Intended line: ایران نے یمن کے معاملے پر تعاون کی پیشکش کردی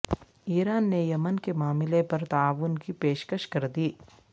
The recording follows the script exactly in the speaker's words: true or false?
true